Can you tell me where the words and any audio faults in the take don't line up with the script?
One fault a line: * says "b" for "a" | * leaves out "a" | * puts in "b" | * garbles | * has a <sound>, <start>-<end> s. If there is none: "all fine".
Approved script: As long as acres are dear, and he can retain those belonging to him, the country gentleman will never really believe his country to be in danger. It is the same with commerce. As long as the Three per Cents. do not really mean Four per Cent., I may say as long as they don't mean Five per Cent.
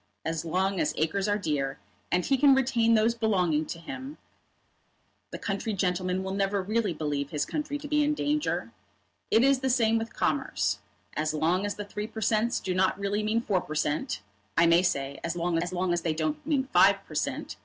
* puts in "long as"